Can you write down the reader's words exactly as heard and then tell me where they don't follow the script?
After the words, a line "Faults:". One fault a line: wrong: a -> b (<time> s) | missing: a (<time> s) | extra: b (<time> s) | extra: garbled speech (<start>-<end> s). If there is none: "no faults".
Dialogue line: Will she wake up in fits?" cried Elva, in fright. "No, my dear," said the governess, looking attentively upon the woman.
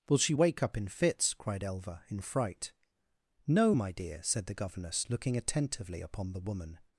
Will she wake up in fits?" cried Elva, in fright. "No, my dear," said the governess, looking attentively upon the woman.
Faults:
no faults